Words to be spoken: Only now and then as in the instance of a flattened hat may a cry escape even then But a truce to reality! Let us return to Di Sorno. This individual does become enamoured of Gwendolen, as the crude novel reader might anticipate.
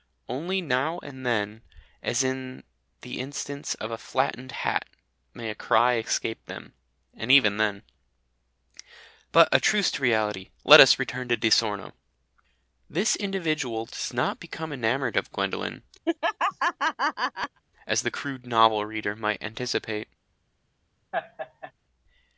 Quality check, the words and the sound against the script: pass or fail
fail